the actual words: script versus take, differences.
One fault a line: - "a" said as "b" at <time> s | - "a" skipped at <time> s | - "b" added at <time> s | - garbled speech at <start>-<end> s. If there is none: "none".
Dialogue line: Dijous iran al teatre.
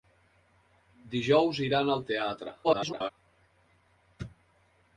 - garbled speech at 2.6-3.1 s